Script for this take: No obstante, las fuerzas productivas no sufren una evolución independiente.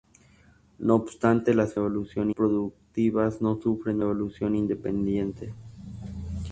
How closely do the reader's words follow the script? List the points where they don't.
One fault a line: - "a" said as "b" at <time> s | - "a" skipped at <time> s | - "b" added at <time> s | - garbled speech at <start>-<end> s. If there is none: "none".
- "fuerzas" said as "evolución" at 1.8 s
- "una" skipped at 4.0 s